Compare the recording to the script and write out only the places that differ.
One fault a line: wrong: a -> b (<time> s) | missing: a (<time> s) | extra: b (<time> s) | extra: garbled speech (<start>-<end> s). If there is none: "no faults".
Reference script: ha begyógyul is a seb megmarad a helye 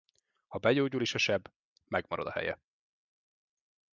no faults